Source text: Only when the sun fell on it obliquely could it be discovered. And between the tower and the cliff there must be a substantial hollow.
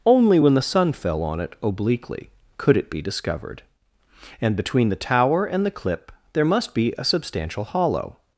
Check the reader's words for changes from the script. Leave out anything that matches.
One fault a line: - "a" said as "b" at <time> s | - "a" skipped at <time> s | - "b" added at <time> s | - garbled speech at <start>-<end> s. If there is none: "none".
- "cliff" said as "clip" at 5.7 s